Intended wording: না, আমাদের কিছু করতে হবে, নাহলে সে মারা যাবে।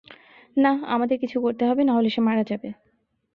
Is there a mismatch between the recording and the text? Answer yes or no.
no